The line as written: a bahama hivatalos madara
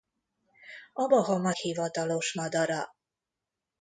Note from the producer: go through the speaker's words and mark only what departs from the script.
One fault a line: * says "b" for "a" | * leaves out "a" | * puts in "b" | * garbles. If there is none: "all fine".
all fine